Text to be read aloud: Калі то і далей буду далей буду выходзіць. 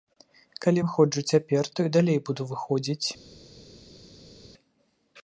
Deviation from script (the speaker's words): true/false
true